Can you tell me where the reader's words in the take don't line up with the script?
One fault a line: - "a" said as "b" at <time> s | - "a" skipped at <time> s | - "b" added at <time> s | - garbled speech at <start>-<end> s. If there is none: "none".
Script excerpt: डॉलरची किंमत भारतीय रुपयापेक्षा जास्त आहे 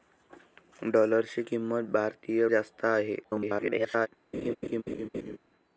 - "रुपयापेक्षा" skipped at 2.5 s
- garbled speech at 3.2-4.1 s